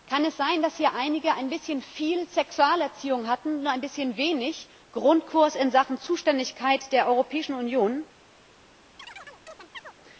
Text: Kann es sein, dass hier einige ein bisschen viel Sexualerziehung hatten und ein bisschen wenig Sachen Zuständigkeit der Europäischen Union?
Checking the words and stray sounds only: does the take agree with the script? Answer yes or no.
no